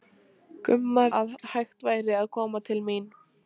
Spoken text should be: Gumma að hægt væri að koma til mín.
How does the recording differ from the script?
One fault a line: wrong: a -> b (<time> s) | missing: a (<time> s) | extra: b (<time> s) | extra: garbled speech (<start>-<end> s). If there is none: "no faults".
no faults